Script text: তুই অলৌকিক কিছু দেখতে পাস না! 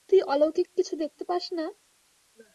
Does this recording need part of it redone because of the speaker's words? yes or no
no